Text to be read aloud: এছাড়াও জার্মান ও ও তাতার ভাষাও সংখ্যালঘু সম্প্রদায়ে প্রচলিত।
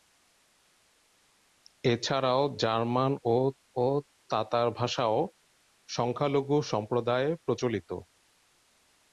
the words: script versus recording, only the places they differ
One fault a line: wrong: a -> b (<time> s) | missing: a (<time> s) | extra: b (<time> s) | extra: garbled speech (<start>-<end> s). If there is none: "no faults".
no faults